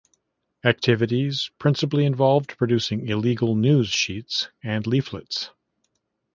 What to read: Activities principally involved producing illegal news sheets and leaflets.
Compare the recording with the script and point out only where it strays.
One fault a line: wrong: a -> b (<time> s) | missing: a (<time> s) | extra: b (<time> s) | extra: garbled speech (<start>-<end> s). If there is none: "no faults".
no faults